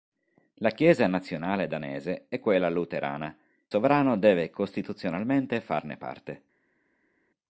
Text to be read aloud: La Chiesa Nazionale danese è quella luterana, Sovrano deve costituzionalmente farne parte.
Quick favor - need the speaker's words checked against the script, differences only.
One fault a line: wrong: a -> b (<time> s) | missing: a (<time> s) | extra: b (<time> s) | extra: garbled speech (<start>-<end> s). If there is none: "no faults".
no faults